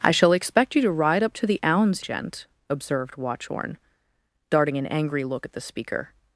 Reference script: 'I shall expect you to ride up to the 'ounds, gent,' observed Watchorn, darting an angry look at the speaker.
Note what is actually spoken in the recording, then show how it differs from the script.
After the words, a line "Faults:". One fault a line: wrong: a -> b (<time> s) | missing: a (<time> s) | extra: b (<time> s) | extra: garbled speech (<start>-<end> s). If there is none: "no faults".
'I shall expect you to ride up to the 'ounds, gent,' observed Watchorn, darting an angry look at the speaker.
Faults:
no faults